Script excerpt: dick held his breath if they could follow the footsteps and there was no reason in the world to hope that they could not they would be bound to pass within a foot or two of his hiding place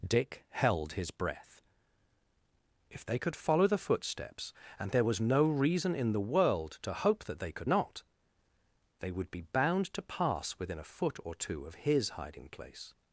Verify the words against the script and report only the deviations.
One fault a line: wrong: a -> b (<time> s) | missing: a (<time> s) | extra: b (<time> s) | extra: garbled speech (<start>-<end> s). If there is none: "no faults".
no faults